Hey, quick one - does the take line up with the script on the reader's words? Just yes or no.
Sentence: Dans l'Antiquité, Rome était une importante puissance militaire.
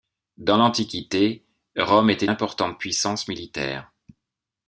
no